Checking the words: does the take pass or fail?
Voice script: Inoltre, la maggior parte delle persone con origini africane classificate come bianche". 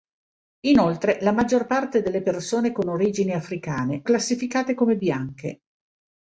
pass